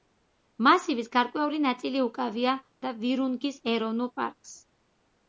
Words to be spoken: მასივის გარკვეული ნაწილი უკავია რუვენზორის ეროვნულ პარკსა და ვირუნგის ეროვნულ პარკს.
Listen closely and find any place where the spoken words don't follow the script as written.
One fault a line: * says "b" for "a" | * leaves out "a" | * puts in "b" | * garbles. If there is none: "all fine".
* leaves out "რუვენზორის ეროვნულ პარკსა"